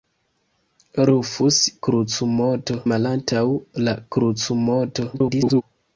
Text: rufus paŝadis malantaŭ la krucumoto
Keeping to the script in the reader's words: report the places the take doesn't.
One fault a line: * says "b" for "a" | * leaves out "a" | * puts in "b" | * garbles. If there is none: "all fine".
* says "krucumoto" for "paŝadis"
* garbles